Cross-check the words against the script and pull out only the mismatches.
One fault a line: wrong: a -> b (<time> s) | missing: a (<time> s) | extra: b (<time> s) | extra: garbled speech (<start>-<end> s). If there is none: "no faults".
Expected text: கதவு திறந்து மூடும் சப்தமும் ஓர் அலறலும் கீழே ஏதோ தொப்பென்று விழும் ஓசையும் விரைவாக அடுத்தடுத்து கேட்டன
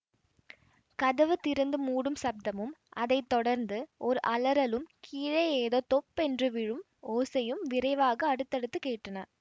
extra: அதை தொடர்ந்து (3.0 s)